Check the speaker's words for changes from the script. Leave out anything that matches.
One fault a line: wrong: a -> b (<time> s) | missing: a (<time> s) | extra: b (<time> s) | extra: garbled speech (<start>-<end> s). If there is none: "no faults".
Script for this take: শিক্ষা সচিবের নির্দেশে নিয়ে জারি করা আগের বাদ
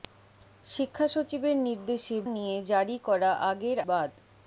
no faults